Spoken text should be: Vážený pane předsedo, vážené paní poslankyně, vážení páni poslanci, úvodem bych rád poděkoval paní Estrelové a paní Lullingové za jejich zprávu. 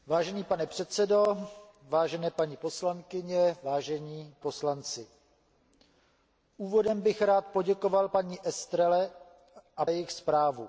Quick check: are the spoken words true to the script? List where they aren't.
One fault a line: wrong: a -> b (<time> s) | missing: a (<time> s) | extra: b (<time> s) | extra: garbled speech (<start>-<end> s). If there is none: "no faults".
missing: páni (4.3 s)
missing: paní Lullingové za (9.9 s)